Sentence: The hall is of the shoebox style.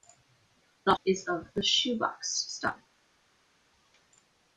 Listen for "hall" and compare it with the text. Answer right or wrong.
wrong